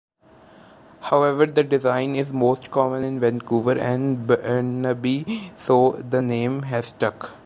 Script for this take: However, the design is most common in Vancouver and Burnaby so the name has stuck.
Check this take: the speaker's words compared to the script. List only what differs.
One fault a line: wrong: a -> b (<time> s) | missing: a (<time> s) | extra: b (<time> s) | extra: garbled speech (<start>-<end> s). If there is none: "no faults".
no faults